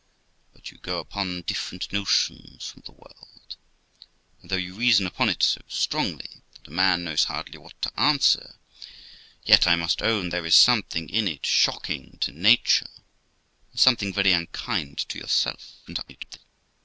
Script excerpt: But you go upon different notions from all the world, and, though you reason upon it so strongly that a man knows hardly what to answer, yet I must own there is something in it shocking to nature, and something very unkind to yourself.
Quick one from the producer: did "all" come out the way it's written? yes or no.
no